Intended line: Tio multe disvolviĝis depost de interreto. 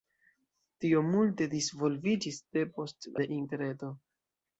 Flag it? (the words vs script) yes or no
no